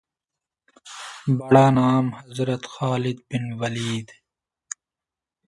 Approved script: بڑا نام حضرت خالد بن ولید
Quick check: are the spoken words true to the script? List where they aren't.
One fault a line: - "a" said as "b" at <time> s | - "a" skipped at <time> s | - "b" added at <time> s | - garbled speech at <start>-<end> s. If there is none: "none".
none